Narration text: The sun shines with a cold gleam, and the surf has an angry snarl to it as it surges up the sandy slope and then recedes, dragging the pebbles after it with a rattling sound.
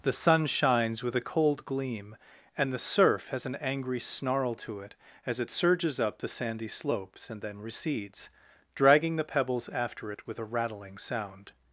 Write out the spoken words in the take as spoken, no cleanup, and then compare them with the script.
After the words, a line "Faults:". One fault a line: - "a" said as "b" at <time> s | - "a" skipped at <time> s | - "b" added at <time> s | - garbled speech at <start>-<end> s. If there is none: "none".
The sun shines with a cold gleam, and the surf has an angry snarl to it as it surges up the sandy slopes and then recedes, dragging the pebbles after it with a rattling sound.
Faults:
- "slope" said as "slopes" at 6.7 s